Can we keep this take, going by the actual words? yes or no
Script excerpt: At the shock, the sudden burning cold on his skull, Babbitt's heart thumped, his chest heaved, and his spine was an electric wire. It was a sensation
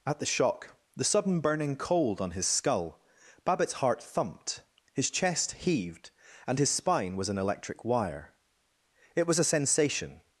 yes